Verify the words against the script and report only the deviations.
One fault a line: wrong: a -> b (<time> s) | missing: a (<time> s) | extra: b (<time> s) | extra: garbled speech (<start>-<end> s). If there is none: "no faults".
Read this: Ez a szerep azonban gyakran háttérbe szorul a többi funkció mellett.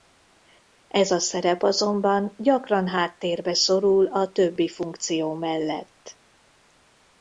no faults